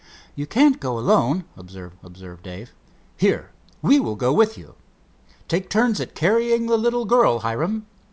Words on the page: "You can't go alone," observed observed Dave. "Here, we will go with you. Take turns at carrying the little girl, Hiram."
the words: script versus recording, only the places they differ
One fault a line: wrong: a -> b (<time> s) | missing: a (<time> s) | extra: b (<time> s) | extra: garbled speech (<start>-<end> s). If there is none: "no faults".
no faults